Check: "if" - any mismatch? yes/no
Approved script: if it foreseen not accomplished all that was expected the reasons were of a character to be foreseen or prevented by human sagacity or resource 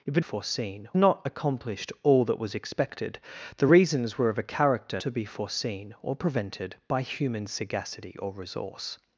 no